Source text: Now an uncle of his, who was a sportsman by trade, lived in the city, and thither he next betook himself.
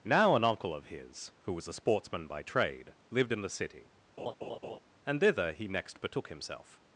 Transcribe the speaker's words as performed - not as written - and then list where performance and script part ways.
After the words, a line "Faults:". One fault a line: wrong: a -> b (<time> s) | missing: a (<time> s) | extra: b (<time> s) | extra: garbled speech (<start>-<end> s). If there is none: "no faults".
Now an uncle of his, who was a sportsman by trade, lived in the city, and thither he next betook himself.
Faults:
no faults